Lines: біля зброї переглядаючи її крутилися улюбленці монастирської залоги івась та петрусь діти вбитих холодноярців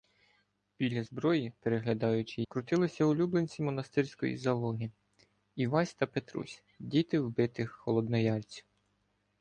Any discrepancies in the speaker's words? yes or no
yes